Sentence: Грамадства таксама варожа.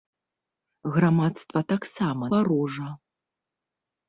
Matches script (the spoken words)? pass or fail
pass